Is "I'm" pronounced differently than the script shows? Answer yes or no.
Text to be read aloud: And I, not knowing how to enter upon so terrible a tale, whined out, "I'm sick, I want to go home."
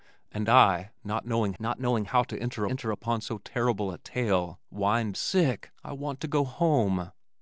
yes